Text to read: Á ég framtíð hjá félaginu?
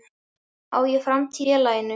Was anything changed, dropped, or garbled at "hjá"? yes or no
yes